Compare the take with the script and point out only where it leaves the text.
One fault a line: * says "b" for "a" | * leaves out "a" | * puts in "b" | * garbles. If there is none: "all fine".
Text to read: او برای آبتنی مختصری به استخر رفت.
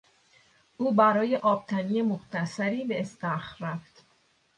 all fine